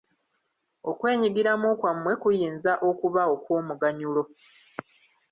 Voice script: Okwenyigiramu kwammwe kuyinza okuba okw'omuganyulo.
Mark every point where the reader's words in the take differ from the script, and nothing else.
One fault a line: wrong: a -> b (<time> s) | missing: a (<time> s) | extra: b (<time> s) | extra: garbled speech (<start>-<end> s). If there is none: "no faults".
no faults